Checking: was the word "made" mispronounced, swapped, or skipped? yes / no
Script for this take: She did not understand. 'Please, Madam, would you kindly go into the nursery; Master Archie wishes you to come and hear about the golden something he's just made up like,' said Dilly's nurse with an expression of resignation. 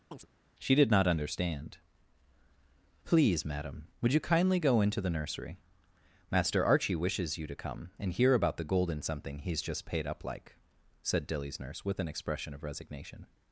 yes